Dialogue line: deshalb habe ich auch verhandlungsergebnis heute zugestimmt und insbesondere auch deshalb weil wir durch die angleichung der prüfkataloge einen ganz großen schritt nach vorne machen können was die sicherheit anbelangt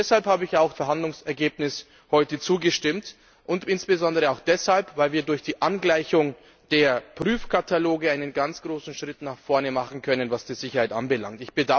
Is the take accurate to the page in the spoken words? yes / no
yes